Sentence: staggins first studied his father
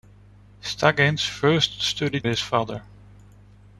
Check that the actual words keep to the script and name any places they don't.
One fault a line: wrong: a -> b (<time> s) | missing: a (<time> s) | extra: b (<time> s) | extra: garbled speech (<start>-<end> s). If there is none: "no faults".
no faults